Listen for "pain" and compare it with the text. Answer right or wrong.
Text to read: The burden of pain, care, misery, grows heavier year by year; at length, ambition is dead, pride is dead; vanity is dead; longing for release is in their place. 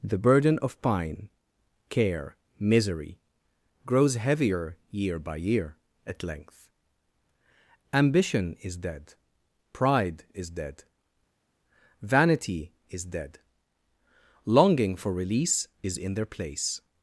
wrong